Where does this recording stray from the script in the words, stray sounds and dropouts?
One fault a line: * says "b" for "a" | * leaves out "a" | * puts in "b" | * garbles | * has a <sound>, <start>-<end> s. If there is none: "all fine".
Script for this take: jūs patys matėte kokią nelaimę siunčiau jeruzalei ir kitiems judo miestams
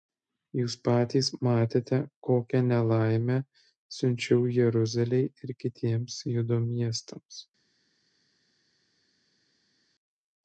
all fine